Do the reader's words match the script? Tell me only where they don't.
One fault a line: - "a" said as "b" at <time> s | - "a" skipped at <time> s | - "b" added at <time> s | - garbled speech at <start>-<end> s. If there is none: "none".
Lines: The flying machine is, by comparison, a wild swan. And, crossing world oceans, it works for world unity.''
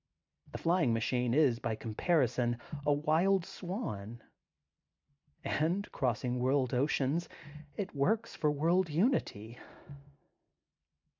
none